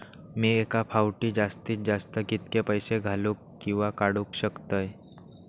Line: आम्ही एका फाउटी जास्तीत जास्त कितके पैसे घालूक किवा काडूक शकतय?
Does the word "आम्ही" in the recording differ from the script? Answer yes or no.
yes